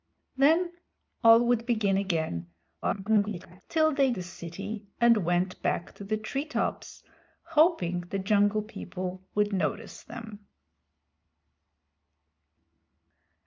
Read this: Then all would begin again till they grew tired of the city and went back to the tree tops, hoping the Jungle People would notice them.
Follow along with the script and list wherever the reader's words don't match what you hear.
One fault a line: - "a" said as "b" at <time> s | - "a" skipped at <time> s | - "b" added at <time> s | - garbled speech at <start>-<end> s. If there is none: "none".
- garbled speech at 2.8-3.6 s
- "grew tired of" skipped at 4.1 s